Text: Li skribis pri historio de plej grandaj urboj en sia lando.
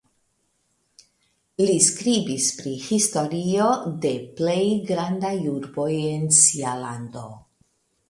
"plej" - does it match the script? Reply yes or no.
yes